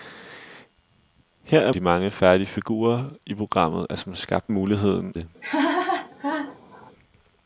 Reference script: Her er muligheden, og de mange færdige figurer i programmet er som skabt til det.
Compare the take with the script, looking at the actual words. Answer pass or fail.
fail